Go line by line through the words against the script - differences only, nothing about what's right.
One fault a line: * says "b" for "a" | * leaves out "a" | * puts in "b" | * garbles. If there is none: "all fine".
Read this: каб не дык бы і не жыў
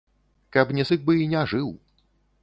all fine